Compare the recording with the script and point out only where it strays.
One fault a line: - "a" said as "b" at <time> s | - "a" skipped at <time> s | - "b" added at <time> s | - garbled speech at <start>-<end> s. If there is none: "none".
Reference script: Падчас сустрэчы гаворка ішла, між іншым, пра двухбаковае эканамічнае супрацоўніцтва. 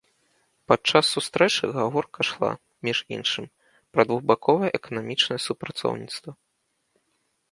none